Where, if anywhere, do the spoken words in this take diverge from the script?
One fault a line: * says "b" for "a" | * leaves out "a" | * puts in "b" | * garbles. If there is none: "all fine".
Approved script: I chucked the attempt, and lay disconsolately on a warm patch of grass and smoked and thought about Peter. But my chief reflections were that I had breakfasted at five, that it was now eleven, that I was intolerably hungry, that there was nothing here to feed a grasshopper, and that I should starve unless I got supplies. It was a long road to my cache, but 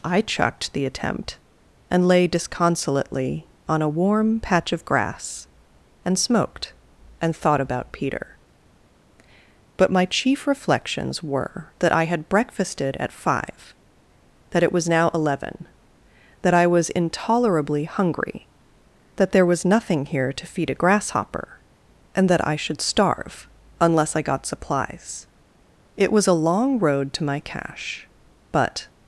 all fine